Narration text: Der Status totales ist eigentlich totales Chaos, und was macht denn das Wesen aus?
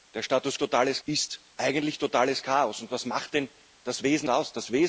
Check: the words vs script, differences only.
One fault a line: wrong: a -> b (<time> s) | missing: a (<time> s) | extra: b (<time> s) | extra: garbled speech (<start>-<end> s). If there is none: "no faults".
no faults